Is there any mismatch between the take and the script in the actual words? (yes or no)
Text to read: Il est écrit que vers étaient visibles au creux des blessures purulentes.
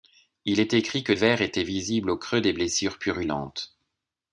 no